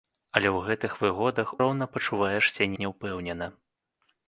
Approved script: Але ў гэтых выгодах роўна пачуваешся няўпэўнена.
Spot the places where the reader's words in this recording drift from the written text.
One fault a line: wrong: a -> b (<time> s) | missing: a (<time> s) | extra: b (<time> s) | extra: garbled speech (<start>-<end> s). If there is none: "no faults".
no faults